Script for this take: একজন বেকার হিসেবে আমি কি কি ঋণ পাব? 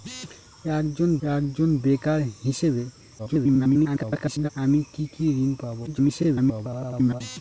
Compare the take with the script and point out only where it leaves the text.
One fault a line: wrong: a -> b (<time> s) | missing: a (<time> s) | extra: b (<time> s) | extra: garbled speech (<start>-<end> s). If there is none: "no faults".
extra: একজন (1.3 s)
extra: garbled speech (3.2-4.5 s)
extra: garbled speech (5.9-7.2 s)